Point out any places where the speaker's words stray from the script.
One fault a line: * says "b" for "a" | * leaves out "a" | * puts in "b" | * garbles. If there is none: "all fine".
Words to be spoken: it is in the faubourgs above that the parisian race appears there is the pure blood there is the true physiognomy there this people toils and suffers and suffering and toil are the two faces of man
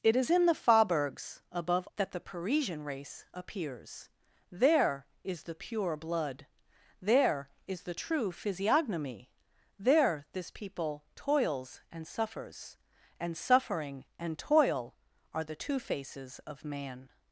all fine